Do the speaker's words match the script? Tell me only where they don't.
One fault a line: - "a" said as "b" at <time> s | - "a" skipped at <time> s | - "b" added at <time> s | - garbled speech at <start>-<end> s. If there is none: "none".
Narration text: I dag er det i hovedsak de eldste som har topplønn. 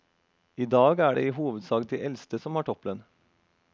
none